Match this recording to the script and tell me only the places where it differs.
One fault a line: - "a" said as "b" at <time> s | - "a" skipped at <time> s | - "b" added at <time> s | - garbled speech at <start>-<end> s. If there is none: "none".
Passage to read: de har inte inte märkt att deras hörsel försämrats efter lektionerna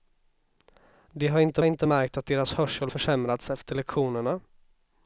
none